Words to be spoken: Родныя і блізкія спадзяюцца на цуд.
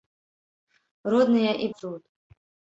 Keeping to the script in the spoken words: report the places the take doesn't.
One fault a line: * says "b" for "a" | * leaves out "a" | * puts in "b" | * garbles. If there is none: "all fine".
* leaves out "блізкія спадзяюцца на"